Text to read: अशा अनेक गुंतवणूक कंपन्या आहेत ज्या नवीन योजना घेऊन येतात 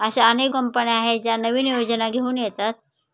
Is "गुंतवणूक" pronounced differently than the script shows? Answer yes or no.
yes